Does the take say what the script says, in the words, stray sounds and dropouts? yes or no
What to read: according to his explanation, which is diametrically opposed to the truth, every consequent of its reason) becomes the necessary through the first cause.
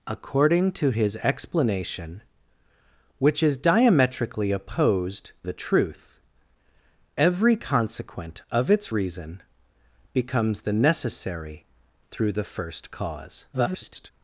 no